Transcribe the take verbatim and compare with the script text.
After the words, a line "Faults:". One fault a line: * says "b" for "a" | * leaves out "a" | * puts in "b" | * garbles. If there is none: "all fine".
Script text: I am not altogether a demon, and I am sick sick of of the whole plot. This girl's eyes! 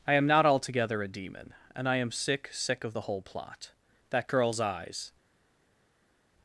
I am not altogether a demon, and I am sick sick of the whole plot. That girl's eyes!
Faults:
* leaves out "of"
* says "That" for "This"